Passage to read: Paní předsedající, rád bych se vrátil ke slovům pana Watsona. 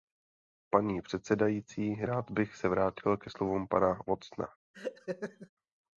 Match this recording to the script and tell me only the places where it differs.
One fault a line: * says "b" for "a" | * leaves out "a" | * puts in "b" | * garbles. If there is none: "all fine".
all fine